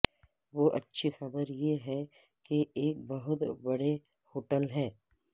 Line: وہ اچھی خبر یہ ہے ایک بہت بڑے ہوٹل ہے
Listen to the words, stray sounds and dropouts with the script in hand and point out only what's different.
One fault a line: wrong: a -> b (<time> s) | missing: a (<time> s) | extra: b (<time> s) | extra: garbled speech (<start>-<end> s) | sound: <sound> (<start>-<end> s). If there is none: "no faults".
extra: کہ (2.5 s)